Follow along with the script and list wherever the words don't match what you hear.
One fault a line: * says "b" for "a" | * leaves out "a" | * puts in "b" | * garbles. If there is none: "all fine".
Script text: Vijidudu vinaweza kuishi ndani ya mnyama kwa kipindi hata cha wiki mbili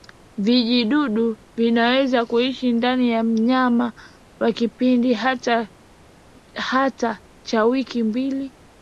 all fine